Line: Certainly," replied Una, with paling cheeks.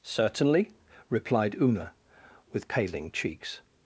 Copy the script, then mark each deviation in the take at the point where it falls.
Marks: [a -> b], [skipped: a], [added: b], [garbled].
Certainly," replied Una, with paling cheeks.